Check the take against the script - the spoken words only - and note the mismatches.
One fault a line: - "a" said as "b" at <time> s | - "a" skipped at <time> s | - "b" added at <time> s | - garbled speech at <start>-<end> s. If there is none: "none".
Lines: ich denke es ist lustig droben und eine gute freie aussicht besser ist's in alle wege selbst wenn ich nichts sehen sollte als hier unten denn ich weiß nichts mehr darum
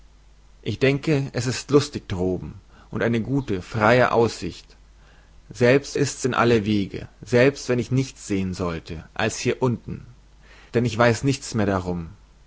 - "besser" said as "selbst" at 5.5 s